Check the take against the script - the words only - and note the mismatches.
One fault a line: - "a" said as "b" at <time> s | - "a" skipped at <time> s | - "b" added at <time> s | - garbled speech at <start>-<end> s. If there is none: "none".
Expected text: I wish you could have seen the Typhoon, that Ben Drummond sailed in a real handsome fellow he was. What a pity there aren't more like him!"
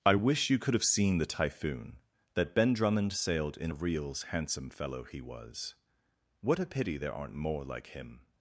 - "real" said as "reals" at 3.7 s